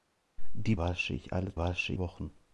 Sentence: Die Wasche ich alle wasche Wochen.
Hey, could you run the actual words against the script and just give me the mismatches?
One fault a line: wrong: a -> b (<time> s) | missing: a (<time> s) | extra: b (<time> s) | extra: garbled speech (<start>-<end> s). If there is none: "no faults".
no faults